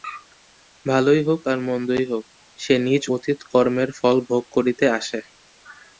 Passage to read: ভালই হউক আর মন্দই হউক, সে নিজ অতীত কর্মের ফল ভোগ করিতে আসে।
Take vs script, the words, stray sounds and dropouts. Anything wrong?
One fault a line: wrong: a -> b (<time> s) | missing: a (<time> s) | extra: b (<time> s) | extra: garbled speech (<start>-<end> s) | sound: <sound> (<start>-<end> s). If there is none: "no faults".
no faults